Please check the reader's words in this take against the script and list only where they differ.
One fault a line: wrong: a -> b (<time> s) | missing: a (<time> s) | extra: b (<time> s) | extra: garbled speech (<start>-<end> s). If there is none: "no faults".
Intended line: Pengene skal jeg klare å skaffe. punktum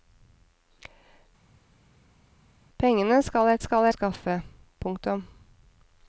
wrong: klare -> skal (3.6 s)